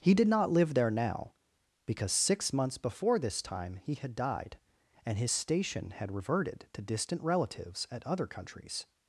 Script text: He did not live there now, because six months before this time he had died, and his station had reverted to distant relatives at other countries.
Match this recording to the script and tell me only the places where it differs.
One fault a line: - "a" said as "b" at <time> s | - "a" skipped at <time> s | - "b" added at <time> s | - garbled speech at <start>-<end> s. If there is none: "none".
none